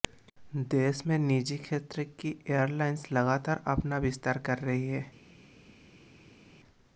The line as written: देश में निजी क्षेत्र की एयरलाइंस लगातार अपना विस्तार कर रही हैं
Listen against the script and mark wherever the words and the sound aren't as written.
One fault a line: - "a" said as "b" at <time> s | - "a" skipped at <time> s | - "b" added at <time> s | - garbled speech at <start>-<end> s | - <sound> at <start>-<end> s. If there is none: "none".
none